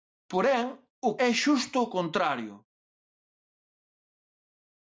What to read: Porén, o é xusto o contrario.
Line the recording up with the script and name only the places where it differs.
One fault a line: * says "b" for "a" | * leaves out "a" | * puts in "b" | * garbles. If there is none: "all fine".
all fine